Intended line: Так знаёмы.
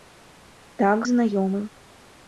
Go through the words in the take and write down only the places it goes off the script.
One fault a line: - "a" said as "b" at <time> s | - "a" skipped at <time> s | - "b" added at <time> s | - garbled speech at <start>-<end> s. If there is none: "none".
none